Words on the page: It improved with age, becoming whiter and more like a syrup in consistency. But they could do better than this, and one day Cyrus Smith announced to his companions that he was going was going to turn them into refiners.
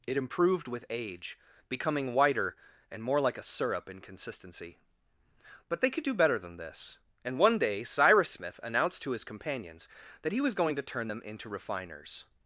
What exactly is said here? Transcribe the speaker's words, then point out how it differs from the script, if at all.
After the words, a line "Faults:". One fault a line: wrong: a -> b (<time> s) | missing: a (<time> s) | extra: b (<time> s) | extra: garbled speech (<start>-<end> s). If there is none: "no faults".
It improved with age, becoming whiter and more like a syrup in consistency. But they could do better than this, and one day Cyrus Smith announced to his companions that he was going to turn them into refiners.
Faults:
missing: was going (10.8 s)